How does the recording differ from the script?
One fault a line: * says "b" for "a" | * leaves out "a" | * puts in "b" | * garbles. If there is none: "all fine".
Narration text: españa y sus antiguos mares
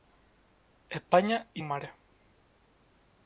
* leaves out "sus antiguos"